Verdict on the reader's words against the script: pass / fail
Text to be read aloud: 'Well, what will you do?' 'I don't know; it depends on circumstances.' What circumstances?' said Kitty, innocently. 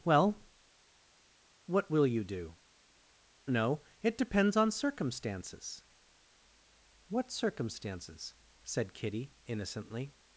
fail